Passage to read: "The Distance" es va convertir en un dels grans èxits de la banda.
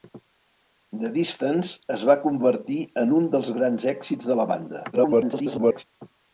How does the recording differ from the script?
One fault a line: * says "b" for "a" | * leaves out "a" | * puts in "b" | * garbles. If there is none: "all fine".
* garbles